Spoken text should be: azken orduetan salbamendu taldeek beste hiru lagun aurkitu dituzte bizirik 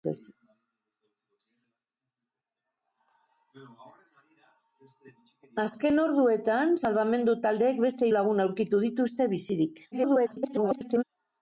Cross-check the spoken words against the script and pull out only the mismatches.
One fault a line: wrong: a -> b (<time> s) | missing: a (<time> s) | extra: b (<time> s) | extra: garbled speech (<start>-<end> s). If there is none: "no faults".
missing: hiru (8.1 s)
extra: garbled speech (9.9-11.0 s)